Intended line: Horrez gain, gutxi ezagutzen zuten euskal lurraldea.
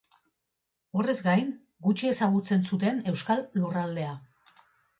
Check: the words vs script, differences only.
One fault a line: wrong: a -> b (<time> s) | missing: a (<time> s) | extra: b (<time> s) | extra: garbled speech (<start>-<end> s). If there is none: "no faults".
no faults